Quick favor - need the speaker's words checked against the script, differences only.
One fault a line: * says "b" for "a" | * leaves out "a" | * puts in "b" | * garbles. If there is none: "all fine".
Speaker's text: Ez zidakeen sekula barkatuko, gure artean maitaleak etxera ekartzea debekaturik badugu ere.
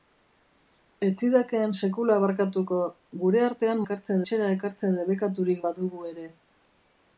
* says "ekartzea" for "maitaleak"